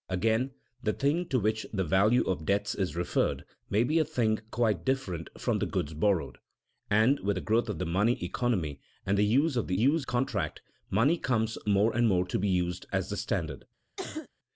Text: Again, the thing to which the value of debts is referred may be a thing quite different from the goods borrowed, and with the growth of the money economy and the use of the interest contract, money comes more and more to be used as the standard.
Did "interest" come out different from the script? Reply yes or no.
yes